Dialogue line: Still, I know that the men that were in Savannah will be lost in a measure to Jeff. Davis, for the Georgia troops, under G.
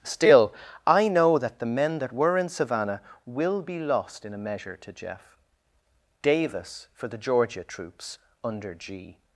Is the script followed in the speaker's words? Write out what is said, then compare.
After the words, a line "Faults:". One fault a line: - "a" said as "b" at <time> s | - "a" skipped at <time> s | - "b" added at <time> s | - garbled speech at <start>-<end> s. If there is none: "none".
Still, I know that the men that were in Savannah will be lost in a measure to Jeff. Davis, for the Georgia troops, under G.
Faults:
none